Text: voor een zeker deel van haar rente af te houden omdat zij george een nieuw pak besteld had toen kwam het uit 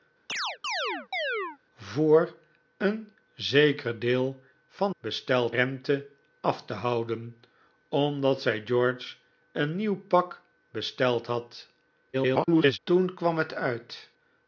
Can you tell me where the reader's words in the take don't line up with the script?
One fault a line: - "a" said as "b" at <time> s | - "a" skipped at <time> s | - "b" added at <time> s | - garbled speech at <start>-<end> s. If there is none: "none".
- "haar" said as "besteld" at 5.0 s
- garbled speech at 12.1-12.8 s